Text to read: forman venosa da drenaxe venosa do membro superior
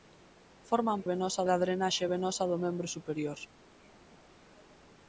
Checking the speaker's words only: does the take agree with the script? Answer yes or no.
yes